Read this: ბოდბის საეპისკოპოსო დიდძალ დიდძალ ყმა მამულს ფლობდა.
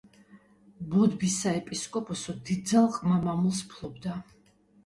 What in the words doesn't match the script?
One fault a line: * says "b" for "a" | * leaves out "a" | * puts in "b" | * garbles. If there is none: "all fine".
* leaves out "დიდძალ"